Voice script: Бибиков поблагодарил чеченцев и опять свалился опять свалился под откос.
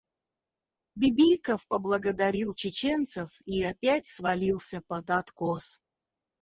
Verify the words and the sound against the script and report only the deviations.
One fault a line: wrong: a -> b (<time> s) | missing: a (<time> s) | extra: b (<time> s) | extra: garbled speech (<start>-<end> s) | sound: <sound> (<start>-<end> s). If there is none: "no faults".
missing: опять свалился (4.8 s)